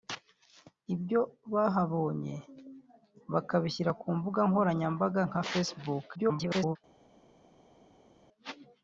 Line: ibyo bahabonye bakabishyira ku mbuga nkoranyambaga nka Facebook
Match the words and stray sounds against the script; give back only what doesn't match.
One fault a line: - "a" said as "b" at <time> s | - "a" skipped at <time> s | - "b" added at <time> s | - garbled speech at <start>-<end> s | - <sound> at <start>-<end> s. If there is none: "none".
- garbled speech at 6.1-6.8 s